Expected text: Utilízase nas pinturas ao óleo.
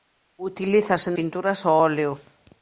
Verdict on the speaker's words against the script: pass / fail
fail